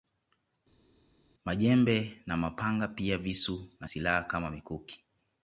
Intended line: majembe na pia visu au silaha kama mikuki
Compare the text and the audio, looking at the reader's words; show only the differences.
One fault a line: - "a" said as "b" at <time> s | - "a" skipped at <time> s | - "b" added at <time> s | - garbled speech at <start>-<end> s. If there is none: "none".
- "mapanga" added at 2.4 s
- "au" said as "na" at 3.8 s